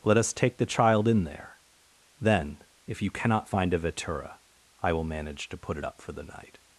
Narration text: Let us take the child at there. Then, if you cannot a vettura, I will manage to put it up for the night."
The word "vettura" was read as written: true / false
true